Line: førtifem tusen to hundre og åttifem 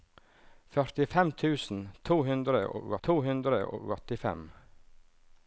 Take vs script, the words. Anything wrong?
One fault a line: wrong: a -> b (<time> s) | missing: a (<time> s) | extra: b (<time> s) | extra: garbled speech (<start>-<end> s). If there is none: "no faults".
extra: to hundre og (3.1 s)